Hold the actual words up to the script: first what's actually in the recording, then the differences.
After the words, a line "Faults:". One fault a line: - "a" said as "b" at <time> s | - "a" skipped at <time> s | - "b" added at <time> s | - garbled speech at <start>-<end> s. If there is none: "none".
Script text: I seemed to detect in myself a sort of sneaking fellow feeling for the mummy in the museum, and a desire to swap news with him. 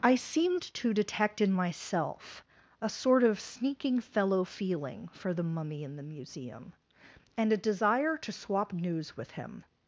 I seemed to detect in myself a sort of sneaking fellow feeling for the mummy in the museum, and a desire to swap news with him.
Faults:
none